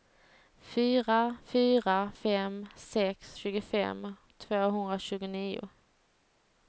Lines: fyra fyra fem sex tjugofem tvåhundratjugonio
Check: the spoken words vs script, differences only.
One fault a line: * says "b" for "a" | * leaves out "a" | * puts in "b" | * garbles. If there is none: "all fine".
all fine